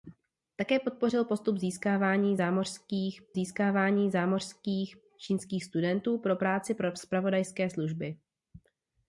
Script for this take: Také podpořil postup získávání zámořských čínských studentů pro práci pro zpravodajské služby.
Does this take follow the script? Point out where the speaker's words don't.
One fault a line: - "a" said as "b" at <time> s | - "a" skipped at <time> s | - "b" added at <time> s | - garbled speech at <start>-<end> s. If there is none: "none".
- "získávání zámořských" added at 3.3 s